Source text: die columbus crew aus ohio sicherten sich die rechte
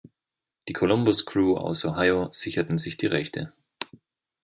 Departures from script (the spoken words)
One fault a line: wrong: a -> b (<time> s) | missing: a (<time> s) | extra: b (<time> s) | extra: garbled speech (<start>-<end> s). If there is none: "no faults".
no faults